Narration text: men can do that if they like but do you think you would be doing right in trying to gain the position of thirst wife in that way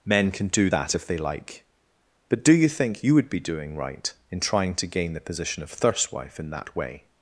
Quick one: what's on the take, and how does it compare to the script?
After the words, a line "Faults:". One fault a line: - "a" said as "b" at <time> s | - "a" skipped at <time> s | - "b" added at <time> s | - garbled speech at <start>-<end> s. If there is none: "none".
men can do that if they like but do you think you would be doing right in trying to gain the position of thirst wife in that way
Faults:
none